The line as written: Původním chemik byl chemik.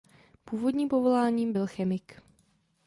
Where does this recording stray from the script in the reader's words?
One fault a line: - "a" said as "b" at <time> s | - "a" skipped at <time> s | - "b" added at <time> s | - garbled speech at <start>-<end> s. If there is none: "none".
- "chemik" said as "povoláním" at 0.9 s